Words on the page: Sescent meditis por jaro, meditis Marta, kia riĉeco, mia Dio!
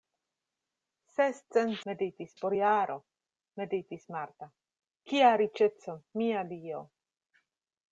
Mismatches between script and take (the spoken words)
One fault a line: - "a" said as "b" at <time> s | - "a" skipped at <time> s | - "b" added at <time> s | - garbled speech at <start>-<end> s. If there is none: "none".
none